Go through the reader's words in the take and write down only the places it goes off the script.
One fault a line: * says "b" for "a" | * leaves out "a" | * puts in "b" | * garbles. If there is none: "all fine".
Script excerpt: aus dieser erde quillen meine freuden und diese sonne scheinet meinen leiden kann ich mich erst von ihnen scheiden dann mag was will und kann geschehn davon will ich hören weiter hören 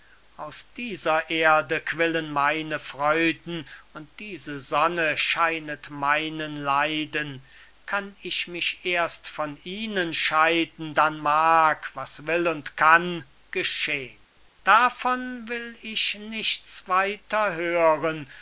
* says "nichts" for "hören"